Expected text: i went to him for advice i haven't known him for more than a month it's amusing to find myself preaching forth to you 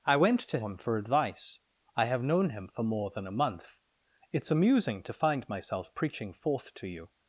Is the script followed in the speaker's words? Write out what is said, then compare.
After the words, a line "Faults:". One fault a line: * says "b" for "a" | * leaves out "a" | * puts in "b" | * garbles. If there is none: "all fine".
i went to him for advice i have known him for more than a month it's amusing to find myself preaching forth to you
Faults:
* says "have" for "haven't"